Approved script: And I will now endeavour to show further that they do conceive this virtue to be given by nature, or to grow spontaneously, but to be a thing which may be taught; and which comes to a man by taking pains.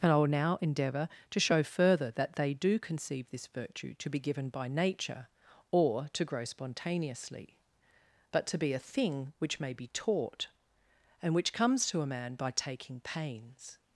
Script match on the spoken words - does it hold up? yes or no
yes